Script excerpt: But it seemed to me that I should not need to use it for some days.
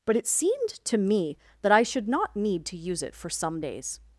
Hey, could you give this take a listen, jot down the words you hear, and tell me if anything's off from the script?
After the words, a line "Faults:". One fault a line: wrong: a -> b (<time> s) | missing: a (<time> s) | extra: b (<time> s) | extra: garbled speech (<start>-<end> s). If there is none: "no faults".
But it seemed to me that I should not need to use it for some days.
Faults:
no faults